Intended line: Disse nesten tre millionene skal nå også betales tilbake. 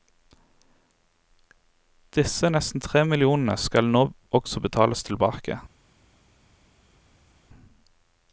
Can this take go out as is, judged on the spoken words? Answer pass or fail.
pass